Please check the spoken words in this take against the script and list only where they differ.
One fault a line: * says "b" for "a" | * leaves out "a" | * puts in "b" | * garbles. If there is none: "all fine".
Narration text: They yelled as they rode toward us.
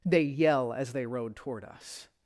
* says "yell" for "yelled"